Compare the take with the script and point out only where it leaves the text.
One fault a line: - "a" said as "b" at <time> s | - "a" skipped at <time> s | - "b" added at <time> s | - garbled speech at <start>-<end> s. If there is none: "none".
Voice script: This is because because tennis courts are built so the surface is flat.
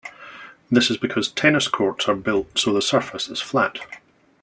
- "because" skipped at 1.3 s